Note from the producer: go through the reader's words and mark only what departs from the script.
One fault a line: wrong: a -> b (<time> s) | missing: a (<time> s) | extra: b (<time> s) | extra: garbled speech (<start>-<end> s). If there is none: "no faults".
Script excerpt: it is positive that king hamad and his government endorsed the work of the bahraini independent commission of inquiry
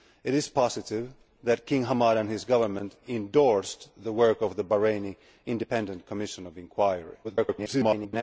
extra: garbled speech (7.2-8.2 s)